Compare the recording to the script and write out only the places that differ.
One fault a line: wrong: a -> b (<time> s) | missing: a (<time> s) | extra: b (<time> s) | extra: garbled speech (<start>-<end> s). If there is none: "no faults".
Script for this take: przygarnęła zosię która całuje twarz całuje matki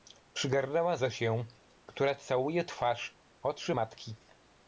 wrong: całuje -> oczy (3.4 s)